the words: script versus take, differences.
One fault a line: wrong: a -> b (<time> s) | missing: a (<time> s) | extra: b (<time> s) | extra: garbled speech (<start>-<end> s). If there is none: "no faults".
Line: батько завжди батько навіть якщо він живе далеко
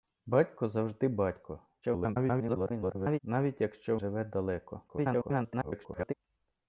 extra: garbled speech (1.8-3.2 s)
missing: він (4.0 s)
extra: garbled speech (4.9-6.1 s)